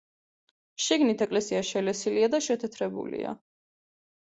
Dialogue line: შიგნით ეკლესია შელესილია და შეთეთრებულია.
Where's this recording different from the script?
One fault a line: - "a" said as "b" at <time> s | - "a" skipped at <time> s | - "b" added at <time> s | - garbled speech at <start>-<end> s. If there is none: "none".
none